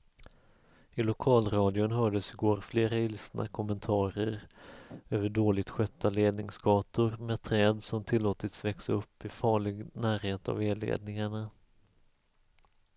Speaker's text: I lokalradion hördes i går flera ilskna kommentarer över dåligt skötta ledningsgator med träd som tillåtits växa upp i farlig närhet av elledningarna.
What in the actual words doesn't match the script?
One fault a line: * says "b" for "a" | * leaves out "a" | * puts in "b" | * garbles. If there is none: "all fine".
all fine